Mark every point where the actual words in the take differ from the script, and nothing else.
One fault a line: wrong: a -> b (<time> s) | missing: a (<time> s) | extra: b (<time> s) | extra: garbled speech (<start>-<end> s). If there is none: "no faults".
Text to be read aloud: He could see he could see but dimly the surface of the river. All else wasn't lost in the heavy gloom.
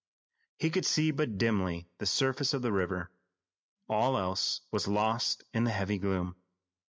missing: he could see (1.1 s)
wrong: wasn't -> was (4.7 s)